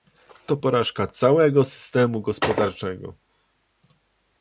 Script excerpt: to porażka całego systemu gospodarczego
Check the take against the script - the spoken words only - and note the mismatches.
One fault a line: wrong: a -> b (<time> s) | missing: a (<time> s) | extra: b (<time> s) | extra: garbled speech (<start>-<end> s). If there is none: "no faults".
no faults